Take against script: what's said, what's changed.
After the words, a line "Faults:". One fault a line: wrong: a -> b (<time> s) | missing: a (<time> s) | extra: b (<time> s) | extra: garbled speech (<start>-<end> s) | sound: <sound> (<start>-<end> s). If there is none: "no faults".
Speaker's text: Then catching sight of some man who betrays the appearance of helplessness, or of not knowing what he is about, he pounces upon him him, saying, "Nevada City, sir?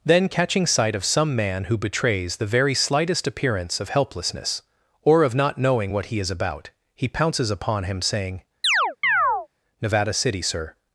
Then catching sight of some man who betrays the very slightest appearance of helplessness, or of not knowing what he is about, he pounces upon him, saying, "Nevada City, sir?
Faults:
extra: very slightest (2.5 s)
missing: him (8.0 s)
sound: chirp (8.6-9.5 s)